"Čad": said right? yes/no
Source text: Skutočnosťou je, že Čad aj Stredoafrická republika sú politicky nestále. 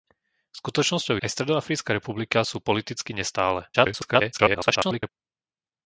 no